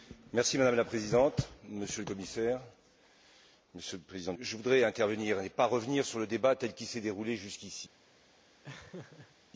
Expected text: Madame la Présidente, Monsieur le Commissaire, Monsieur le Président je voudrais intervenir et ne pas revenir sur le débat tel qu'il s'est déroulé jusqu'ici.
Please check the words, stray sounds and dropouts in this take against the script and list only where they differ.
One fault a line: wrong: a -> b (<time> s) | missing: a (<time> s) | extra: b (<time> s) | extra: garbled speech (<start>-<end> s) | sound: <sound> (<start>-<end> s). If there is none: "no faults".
sound: laugh (8.6-9.4 s)